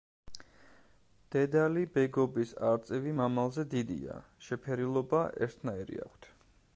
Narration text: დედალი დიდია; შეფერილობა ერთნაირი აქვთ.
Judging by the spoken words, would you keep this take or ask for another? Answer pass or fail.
fail